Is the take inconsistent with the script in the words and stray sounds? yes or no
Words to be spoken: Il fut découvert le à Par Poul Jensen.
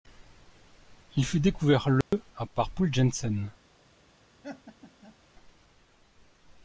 yes